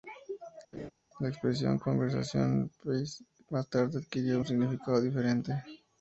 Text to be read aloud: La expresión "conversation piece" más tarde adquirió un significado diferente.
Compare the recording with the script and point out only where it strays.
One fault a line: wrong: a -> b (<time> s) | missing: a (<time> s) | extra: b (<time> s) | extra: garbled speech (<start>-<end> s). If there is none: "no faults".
no faults